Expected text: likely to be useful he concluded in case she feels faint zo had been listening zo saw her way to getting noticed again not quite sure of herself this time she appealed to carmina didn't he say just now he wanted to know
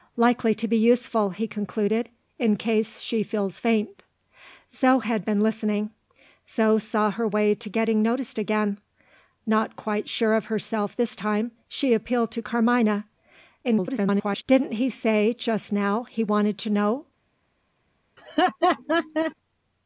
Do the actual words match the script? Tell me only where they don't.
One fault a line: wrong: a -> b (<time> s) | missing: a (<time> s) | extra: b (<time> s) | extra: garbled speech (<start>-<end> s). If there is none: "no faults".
extra: garbled speech (13.6-14.4 s)